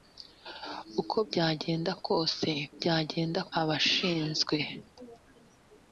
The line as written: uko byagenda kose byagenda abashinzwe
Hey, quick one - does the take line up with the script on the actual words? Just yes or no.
yes